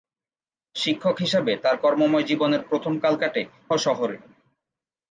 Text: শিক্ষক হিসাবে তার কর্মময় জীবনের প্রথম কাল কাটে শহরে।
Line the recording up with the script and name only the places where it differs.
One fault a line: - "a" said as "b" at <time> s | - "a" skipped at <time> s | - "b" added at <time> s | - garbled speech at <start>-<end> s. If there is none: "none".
none